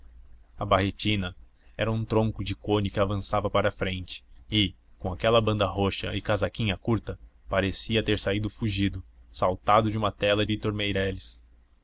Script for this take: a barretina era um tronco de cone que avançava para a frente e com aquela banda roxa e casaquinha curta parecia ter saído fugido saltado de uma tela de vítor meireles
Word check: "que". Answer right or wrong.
right